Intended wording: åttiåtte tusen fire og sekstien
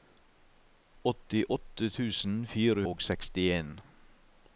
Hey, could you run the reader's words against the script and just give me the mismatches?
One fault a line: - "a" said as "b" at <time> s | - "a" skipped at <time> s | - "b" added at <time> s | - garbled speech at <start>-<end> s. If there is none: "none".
none